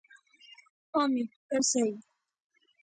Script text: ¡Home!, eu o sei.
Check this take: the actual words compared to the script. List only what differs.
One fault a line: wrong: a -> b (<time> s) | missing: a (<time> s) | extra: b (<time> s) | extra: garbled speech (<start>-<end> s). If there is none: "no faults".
no faults